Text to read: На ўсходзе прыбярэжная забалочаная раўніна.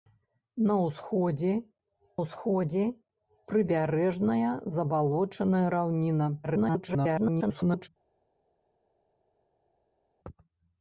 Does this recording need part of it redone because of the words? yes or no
yes